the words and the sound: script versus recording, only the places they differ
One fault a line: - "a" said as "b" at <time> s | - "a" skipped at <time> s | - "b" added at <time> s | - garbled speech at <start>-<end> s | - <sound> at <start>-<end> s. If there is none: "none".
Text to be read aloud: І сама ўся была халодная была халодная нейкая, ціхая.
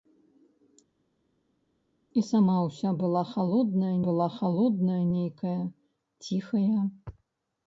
none